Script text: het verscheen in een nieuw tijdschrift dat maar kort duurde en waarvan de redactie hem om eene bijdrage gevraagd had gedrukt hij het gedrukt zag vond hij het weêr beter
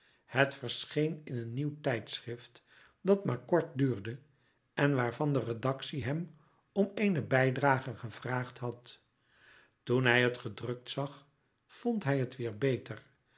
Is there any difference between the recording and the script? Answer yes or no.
yes